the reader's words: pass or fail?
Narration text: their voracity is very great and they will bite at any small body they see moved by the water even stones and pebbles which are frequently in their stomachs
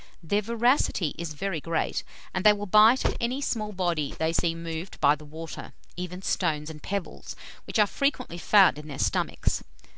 fail